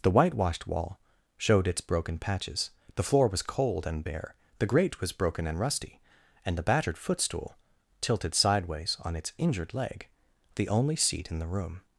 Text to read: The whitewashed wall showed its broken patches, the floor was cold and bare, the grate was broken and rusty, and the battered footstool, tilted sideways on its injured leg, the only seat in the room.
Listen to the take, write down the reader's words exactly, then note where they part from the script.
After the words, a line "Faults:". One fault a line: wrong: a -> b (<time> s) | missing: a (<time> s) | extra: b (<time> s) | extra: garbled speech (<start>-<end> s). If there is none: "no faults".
The whitewashed wall showed its broken patches, the floor was cold and bare, the grate was broken and rusty, and the battered footstool, tilted sideways on its injured leg, the only seat in the room.
Faults:
no faults